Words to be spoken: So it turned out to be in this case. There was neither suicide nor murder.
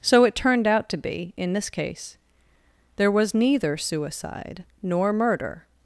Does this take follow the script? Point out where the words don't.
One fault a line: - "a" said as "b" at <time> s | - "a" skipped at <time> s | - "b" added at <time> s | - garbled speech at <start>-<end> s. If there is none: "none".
none